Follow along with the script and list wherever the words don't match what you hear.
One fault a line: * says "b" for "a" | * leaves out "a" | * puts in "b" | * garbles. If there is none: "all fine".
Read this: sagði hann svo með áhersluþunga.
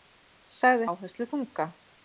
* leaves out "hann svo með"